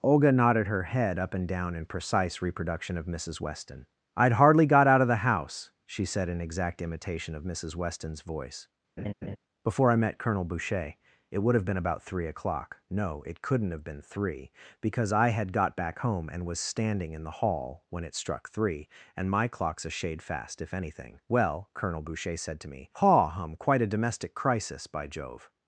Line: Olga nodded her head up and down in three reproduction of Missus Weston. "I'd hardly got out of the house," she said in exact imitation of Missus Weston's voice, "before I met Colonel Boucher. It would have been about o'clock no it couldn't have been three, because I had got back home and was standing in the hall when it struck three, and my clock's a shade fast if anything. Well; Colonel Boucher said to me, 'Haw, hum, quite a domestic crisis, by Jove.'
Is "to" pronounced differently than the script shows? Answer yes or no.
no